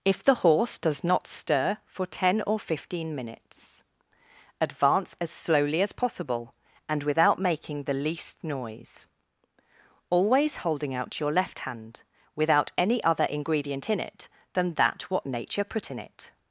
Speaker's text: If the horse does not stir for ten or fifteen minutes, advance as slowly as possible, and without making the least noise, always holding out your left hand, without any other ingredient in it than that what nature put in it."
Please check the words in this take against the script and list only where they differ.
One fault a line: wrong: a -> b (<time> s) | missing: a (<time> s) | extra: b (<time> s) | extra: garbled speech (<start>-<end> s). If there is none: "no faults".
no faults